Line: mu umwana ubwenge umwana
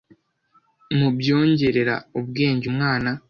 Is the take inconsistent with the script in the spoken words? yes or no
yes